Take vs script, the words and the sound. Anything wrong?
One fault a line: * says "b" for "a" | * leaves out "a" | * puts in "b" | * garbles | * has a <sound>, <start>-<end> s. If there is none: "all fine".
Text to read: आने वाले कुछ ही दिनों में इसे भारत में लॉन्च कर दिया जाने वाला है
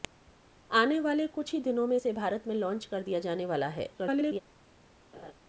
* garbles
* has a laugh, 5.1-5.3 s